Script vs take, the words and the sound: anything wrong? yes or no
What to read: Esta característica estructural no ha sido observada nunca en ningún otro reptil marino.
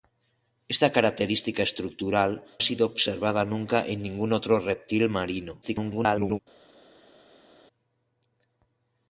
yes